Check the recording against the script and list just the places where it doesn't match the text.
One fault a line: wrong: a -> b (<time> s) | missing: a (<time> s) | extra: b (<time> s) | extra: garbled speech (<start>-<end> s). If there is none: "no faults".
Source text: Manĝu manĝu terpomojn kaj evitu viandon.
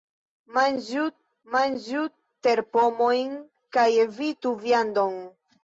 no faults